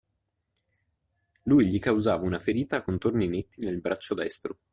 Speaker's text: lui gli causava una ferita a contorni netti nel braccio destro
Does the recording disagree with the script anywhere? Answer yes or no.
no